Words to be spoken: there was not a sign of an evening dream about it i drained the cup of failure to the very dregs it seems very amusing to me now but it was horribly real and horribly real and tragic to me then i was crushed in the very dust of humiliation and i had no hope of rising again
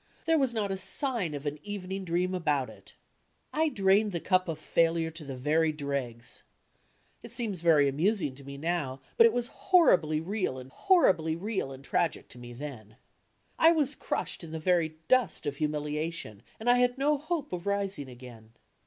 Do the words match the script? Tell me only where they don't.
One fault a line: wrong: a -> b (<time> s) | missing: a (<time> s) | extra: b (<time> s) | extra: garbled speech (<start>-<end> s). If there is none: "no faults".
no faults